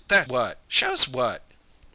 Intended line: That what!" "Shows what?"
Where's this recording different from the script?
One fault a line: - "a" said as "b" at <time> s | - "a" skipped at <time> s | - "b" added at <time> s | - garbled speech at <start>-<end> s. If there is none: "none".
none